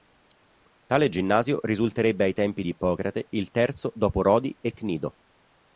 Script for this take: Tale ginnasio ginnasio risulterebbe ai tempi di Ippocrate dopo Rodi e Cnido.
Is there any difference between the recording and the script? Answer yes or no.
yes